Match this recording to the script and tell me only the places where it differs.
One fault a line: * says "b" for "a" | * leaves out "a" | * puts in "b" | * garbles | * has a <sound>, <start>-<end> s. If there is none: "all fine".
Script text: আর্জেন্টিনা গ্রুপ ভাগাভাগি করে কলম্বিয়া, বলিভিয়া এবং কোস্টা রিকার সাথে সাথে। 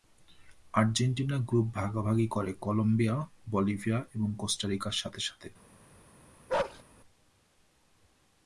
* has a bark, 6.5-6.8 s